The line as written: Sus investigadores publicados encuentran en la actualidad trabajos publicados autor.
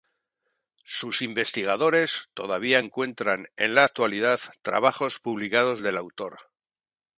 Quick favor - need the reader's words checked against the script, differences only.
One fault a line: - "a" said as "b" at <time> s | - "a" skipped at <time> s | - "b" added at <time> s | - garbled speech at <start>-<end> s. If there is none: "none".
- "publicados" said as "todavía" at 2.3 s
- "del" added at 5.8 s